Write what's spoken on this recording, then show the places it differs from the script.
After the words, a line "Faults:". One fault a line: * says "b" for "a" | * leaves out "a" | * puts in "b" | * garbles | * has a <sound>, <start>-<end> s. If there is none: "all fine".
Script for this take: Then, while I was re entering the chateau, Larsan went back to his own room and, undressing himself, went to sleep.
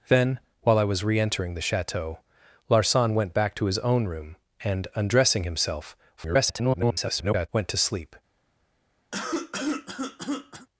Then, while I was re entering the chateau, Larsan went back to his own room and, undressing himself, [garbled] went to sleep.
Faults:
* garbles
* has a cough, 9.1-10.7 s